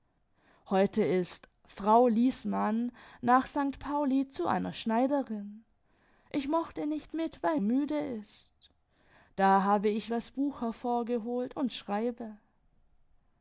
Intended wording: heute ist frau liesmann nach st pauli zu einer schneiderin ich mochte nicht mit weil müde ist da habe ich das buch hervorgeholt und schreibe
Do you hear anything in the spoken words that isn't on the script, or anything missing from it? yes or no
no